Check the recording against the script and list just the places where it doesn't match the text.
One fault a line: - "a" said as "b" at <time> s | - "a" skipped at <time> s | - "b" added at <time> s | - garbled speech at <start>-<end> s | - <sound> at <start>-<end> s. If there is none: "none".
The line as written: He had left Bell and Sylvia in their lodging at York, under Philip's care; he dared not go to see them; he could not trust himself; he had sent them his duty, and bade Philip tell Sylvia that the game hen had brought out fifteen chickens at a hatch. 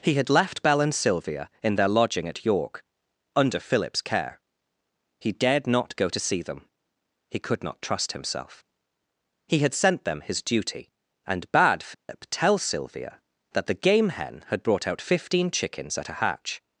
- dropout at 11.9-12.1 s